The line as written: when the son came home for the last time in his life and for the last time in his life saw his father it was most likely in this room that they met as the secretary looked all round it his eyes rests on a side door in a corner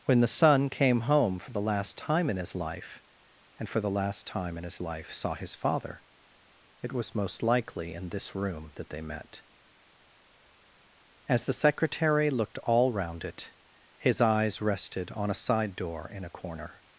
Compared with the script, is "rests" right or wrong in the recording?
wrong